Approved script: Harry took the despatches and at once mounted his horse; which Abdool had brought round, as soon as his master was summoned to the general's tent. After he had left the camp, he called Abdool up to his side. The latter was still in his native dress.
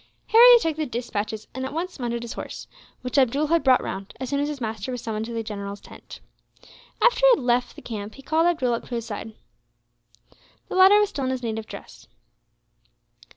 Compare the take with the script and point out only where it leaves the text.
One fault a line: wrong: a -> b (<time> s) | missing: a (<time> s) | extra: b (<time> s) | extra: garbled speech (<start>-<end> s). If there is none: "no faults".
no faults